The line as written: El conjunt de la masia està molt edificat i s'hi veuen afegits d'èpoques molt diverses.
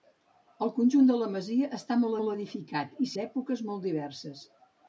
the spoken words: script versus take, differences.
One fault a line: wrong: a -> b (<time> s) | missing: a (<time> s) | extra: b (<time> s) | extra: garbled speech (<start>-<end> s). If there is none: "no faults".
extra: molt (2.2 s)
missing: s'hi veuen afegits (3.1 s)